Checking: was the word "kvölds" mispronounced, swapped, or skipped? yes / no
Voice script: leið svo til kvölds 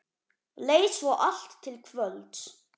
no